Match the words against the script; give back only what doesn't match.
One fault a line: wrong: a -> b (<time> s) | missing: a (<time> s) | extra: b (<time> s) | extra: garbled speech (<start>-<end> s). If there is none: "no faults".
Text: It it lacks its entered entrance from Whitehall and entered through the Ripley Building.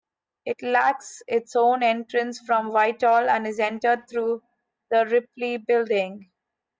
missing: it (0.6 s)
wrong: entered -> own (1.6 s)
extra: is (3.5 s)